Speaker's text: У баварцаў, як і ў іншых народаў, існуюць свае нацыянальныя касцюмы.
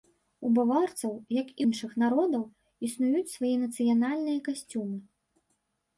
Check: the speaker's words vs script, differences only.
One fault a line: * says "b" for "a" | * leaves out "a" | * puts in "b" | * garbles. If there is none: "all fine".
* leaves out "ў"